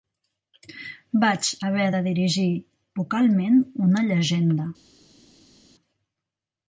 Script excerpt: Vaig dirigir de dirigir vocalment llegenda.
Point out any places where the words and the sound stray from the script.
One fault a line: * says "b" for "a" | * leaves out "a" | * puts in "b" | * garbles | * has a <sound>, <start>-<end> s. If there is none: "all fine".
* says "haver" for "dirigir"
* puts in "una"